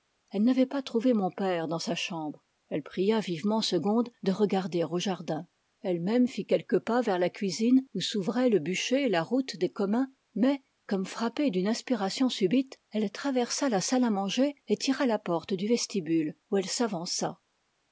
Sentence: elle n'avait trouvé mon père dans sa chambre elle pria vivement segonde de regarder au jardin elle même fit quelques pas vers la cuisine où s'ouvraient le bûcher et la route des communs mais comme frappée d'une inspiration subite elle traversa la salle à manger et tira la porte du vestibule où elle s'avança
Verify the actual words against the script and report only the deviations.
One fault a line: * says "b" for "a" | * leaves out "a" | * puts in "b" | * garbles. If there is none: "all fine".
* puts in "pas"